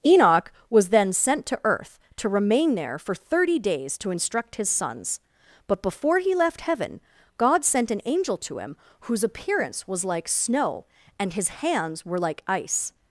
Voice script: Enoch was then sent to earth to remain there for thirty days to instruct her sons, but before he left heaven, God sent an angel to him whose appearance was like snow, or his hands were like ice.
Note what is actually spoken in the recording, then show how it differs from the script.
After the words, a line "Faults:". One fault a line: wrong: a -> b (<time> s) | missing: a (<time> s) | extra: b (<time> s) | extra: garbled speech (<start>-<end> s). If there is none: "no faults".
Enoch was then sent to earth to remain there for thirty days to instruct his sons, but before he left heaven, God sent an angel to him whose appearance was like snow, and his hands were like ice.
Faults:
wrong: her -> his (4.5 s)
wrong: or -> and (11.2 s)